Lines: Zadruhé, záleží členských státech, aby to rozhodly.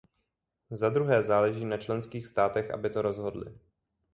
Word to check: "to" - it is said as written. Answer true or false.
true